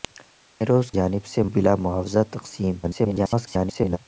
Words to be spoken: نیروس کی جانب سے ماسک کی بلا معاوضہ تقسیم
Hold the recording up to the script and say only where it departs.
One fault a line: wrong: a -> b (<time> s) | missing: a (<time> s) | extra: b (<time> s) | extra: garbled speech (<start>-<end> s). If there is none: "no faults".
missing: کی (0.9 s)
missing: ماسک کی (1.4 s)
extra: garbled speech (2.8-4.0 s)